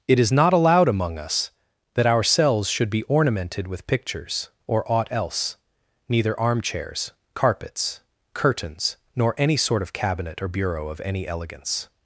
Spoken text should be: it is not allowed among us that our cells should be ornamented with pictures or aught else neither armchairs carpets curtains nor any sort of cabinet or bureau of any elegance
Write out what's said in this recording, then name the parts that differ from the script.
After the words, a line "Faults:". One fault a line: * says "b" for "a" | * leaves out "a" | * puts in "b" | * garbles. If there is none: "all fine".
it is not allowed among us that our cells should be ornamented with pictures or aught else neither armchairs carpets curtains nor any sort of cabinet or bureau of any elegance
Faults:
all fine